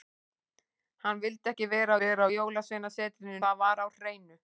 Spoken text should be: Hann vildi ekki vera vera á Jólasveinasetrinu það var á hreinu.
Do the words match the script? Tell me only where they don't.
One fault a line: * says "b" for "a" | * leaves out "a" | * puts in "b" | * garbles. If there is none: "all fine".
all fine